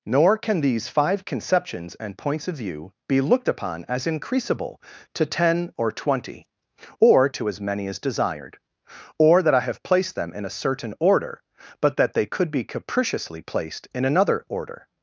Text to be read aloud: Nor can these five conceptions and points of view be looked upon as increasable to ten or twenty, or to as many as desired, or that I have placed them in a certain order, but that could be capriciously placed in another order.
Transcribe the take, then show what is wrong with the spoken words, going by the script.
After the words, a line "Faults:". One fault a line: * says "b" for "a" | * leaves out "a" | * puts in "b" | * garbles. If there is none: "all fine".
Nor can these five conceptions and points of view be looked upon as increasable to ten or twenty, or to as many as desired, or that I have placed them in a certain order, but that they could be capriciously placed in another order.
Faults:
* puts in "they"